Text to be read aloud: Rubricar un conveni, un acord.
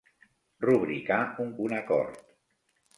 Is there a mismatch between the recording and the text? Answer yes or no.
yes